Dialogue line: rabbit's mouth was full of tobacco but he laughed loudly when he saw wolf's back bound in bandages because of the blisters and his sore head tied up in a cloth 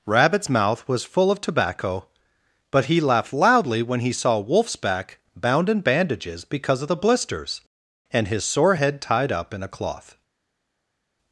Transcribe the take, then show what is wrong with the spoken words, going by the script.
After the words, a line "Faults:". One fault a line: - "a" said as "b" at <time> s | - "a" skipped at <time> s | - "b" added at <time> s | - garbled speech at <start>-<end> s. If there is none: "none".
rabbit's mouth was full of tobacco but he laughed loudly when he saw wolf's back bound in bandages because of the blisters and his sore head tied up in a cloth
Faults:
none